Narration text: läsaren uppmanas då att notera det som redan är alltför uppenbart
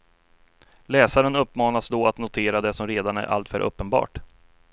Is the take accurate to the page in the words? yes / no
yes